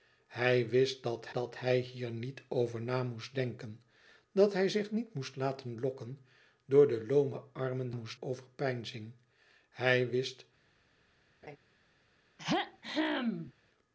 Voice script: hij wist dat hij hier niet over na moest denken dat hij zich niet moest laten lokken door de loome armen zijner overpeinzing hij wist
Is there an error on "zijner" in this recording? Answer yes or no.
yes